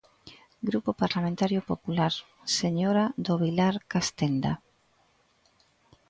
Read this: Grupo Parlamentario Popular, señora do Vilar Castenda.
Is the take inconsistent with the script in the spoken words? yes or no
no